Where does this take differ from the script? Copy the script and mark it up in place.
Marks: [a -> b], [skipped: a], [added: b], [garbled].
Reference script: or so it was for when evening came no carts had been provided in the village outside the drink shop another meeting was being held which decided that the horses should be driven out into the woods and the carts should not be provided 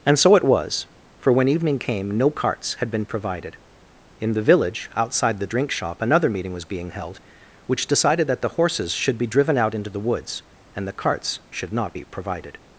[or -> and] so it was for when evening came no carts had been provided in the village outside the drink shop another meeting was being held which decided that the horses should be driven out into the woods and the carts should not be provided